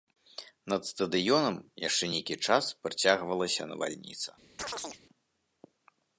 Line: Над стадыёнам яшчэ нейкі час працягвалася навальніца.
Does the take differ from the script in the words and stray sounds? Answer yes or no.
yes